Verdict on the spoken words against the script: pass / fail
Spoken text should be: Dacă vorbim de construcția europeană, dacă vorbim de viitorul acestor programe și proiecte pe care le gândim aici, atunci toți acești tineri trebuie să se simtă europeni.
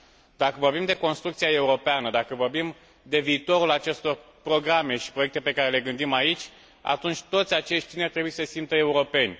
pass